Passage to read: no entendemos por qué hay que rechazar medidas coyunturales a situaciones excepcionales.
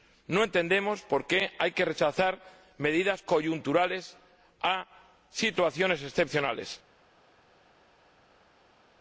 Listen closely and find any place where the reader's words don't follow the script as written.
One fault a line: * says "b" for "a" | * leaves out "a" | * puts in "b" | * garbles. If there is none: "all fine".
all fine